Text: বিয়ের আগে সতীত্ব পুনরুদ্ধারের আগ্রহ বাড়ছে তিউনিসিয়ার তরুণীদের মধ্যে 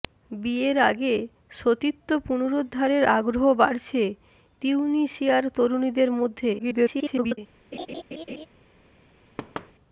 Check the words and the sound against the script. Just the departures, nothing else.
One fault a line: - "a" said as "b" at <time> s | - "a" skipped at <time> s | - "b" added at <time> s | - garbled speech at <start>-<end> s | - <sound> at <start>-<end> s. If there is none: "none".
- garbled speech at 6.6-7.4 s
- laugh at 7.7-8.5 s
- thud at 9.4-9.7 s